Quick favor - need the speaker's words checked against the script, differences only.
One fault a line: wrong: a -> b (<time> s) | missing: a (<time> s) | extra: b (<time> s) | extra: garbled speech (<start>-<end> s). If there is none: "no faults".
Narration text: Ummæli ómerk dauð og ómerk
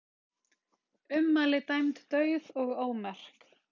wrong: ómerk -> dæmd (1.7 s)